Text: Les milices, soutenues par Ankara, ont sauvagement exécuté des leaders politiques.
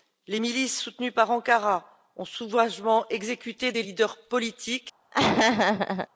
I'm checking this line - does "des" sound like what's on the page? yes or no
yes